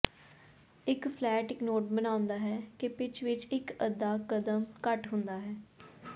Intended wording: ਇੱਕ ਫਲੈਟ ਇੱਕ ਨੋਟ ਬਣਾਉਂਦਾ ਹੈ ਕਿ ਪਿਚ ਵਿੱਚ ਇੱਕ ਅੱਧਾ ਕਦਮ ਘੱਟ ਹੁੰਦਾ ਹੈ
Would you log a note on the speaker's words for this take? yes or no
no